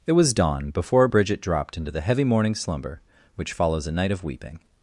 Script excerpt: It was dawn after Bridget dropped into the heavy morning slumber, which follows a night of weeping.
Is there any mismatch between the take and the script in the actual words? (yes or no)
yes